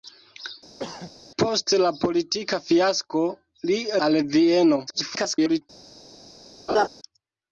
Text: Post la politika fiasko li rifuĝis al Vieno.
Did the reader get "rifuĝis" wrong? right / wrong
wrong